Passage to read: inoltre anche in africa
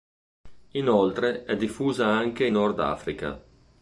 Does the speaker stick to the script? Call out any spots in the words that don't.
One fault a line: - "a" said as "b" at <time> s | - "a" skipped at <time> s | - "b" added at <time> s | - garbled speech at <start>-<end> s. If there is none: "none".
- "è diffusa" added at 1.4 s
- "nord" added at 2.5 s